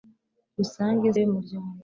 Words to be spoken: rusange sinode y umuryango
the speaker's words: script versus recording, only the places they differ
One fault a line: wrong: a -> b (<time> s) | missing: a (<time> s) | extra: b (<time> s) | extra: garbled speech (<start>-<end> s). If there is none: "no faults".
missing: sinode (1.1 s)